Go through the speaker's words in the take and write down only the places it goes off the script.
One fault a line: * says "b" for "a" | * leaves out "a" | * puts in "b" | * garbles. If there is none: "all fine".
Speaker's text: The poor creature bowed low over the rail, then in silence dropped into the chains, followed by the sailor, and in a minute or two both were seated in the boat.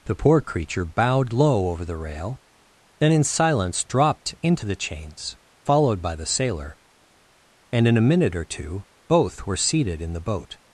all fine